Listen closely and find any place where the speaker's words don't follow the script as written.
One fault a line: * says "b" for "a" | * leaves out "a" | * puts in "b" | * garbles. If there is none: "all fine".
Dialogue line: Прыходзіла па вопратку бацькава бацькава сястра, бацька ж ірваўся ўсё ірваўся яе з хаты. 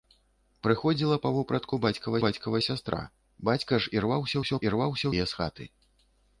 all fine